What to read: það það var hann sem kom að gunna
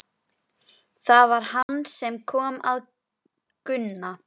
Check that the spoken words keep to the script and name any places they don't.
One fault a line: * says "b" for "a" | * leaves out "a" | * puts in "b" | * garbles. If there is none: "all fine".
* leaves out "það"